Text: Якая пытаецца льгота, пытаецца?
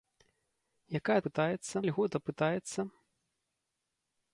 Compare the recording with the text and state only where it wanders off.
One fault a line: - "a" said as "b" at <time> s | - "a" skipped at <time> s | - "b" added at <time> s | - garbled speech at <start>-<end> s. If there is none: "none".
none